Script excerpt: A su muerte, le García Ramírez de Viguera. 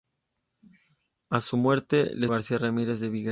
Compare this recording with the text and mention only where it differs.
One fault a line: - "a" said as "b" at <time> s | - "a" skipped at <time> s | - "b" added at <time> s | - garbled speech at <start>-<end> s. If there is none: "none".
none